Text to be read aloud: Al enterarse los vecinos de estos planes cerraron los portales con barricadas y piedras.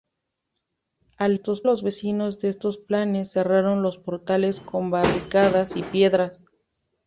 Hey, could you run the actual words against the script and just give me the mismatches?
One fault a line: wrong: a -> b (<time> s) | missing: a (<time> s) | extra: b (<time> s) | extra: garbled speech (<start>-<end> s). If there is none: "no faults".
wrong: enterarse -> estos (1.3 s)